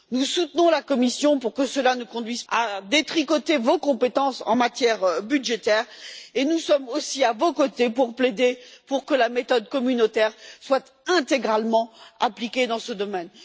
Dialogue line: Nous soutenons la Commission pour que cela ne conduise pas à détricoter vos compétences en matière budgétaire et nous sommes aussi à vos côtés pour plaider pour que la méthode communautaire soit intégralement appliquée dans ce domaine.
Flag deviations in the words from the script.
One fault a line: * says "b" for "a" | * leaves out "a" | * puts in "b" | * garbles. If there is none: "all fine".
* leaves out "pas"